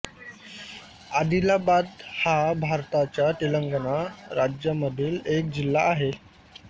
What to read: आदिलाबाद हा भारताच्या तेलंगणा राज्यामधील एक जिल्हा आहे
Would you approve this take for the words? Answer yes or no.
yes